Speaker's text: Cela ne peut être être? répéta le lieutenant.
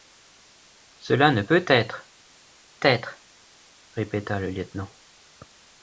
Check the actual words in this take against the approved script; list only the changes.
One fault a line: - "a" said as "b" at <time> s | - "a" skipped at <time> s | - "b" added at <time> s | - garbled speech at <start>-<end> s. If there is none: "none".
none